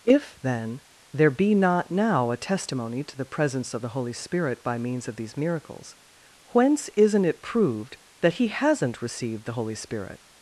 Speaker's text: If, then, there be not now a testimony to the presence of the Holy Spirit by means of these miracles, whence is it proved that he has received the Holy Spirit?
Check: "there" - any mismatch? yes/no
no